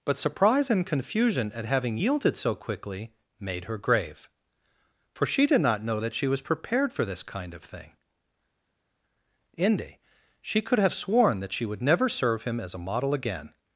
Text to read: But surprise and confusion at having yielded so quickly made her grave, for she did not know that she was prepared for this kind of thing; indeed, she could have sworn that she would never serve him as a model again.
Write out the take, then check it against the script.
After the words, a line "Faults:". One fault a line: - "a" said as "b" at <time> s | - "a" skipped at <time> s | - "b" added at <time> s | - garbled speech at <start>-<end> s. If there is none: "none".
But surprise and confusion at having yielded so quickly made her grave, for she did not know that she was prepared for this kind of thing; inde, she could have sworn that she would never serve him as a model again.
Faults:
- "indeed" said as "inde" at 9.6 s